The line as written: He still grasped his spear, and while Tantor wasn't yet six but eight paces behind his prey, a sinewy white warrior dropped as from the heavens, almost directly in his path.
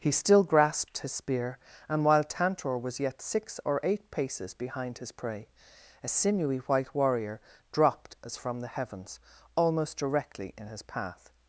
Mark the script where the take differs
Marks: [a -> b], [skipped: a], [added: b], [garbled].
He still grasped his spear, and while Tantor [wasn't -> was] yet six [but -> or] eight paces behind his prey, a sinewy white warrior dropped as from the heavens, almost directly in his path.